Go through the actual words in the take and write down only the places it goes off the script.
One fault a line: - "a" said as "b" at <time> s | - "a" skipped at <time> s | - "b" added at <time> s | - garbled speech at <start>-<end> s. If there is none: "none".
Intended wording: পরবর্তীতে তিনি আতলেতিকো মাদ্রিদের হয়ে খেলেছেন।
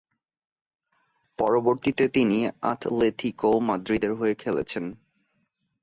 none